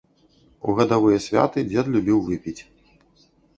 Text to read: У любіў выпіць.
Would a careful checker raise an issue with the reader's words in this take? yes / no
yes